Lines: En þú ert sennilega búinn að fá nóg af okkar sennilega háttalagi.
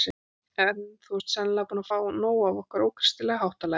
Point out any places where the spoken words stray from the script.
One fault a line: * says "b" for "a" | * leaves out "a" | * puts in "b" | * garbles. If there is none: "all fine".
* says "ókristilega" for "sennilega"